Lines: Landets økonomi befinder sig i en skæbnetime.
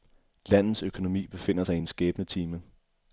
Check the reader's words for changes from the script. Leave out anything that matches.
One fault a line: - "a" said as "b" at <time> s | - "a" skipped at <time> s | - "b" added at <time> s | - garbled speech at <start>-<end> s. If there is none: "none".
none